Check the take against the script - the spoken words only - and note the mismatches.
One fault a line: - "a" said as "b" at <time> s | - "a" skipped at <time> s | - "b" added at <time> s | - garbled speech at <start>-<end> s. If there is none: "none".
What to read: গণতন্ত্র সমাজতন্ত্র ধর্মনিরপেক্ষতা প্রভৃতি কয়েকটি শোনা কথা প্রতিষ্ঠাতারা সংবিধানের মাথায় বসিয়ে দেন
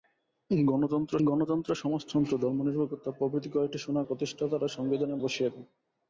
- "গণতন্ত্র" added at 1.3 s
- "কথা" skipped at 4.0 s
- "মাথায়" skipped at 5.2 s